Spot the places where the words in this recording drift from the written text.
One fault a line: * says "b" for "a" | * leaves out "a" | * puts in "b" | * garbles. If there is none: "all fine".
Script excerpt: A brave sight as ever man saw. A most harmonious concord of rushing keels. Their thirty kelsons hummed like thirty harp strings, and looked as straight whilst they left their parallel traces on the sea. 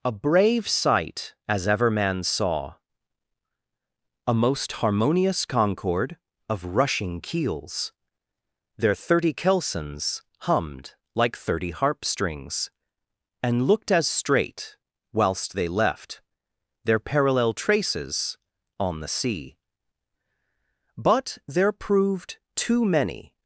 * puts in "But there proved too many"